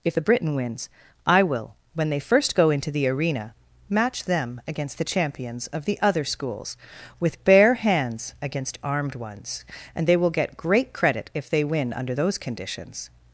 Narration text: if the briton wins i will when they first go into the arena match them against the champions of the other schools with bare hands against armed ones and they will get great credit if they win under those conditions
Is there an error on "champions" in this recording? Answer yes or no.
no